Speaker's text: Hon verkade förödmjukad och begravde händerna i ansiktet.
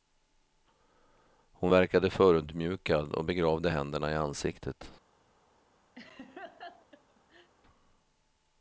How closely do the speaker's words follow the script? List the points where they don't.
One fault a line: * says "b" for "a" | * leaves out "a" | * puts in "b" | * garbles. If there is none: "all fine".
all fine